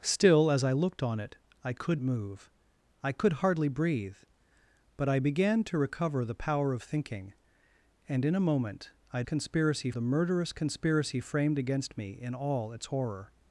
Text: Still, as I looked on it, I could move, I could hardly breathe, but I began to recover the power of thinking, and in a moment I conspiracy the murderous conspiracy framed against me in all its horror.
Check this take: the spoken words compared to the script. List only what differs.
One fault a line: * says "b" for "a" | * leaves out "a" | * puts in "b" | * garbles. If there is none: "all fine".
all fine